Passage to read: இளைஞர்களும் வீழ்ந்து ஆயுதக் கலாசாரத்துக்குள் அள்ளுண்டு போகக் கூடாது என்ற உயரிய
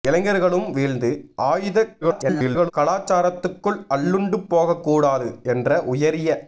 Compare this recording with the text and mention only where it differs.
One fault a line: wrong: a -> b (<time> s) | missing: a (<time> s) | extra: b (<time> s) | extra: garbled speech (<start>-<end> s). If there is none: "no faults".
extra: garbled speech (2.0-2.7 s)